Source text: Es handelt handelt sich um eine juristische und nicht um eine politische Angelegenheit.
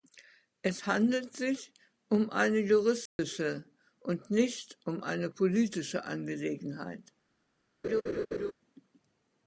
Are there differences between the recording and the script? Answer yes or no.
yes